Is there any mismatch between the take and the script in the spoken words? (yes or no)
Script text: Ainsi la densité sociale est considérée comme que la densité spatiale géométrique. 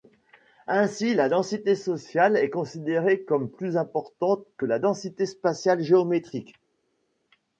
yes